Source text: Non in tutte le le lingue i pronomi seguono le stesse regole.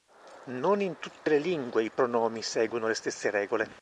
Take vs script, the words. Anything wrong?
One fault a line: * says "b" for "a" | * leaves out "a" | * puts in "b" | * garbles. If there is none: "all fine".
* leaves out "le"